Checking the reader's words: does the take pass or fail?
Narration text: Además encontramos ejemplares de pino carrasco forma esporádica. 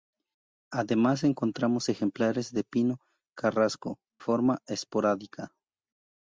pass